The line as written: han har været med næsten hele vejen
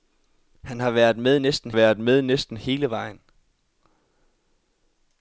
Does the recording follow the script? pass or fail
fail